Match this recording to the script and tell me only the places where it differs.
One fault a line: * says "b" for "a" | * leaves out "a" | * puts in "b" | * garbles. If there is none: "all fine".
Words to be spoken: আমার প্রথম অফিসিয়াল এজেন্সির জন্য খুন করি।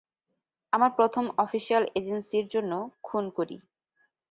all fine